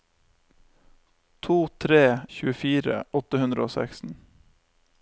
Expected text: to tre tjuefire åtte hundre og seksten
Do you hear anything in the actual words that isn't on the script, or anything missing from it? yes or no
no